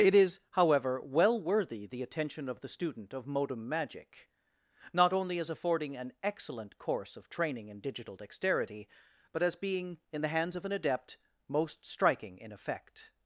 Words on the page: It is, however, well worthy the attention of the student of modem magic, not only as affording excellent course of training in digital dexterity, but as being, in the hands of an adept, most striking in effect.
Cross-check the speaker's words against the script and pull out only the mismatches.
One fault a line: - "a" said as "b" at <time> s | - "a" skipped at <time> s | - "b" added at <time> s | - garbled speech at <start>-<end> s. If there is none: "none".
- "an" added at 6.0 s